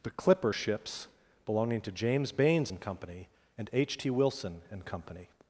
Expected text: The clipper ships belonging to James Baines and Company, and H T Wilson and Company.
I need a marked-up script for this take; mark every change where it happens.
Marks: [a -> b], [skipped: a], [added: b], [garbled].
The clipper ships belonging to James Baines and Company, and H T Wilson and Company.